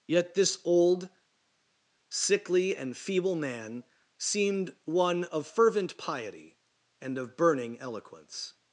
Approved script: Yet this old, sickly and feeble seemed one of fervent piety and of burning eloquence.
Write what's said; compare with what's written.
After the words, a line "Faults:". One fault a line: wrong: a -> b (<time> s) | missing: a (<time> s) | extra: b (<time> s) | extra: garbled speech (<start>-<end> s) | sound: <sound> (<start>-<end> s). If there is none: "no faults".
Yet this old, sickly and feeble man seemed one of fervent piety and of burning eloquence.
Faults:
extra: man (3.3 s)